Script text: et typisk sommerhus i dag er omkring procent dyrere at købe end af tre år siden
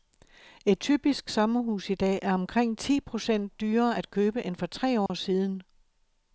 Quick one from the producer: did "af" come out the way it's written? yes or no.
no